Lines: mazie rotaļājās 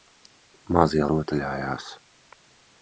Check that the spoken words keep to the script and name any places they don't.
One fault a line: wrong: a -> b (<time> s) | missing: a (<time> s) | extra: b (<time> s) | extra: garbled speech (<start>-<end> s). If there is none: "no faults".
no faults